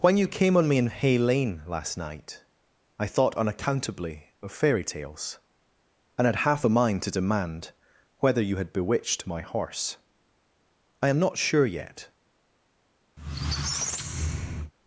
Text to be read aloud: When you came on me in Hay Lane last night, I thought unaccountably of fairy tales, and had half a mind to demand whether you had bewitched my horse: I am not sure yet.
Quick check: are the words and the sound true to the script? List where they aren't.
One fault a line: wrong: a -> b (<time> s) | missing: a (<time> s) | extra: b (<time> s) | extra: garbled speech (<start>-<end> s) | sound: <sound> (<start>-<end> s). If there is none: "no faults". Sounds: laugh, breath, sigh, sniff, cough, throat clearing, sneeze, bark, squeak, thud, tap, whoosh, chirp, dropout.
sound: squeak (13.2-14.7 s)